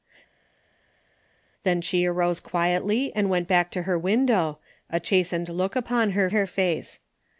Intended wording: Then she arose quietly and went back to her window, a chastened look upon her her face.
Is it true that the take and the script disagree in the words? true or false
false